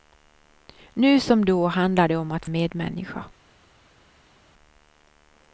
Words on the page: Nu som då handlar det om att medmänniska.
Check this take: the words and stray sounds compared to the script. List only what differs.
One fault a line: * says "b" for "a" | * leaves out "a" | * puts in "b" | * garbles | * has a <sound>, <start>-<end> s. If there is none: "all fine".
all fine